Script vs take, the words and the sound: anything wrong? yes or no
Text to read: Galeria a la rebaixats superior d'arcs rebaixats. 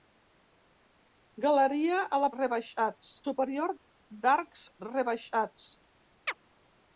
yes